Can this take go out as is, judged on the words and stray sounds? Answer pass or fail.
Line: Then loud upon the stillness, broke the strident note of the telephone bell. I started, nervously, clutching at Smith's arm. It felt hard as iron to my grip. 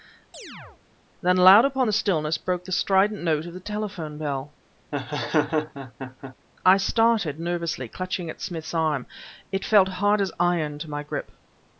fail